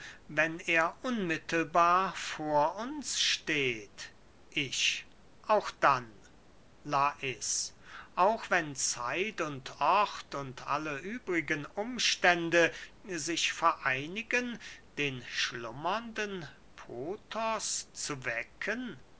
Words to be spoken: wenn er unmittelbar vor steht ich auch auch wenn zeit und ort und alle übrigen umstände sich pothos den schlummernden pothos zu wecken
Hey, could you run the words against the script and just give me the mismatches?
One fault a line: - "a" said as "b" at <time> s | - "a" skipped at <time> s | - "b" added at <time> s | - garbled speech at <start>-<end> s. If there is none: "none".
- "uns" added at 2.8 s
- "dann lais" added at 5.7 s
- "pothos" said as "vereinigen" at 13.5 s